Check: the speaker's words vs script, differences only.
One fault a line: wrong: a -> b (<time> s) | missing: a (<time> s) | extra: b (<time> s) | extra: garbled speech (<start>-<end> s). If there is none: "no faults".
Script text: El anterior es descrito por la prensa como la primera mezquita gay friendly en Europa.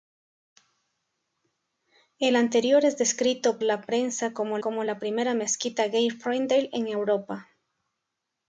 missing: por (3.6 s)
extra: como (4.6 s)